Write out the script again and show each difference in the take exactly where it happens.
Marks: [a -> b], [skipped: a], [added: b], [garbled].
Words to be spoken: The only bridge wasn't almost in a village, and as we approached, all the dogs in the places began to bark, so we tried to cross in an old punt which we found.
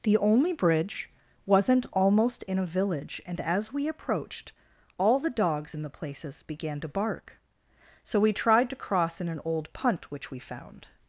The only bridge wasn't almost in a village, and as we approached, all the dogs in the places began to bark, so we tried to cross in an old punt which we found.